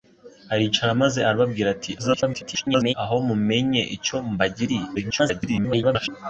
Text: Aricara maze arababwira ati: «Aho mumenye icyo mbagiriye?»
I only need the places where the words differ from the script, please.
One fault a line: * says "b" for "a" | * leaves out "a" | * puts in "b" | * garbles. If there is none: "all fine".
* garbles
* garbles